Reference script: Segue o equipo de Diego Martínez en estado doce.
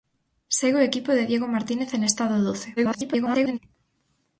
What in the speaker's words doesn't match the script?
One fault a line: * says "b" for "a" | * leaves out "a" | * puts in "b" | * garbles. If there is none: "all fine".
* garbles